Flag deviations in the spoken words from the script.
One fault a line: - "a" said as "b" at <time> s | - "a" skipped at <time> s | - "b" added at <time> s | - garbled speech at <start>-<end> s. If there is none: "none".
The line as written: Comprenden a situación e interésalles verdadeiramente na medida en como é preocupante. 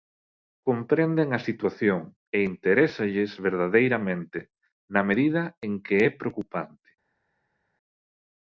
- "como" said as "que" at 5.8 s